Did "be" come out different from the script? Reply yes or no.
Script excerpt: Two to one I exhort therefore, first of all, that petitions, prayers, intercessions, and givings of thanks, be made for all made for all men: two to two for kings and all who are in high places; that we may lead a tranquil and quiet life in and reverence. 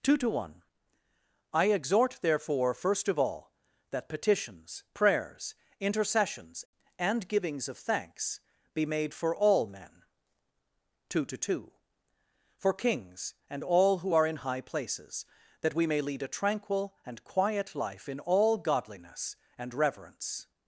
no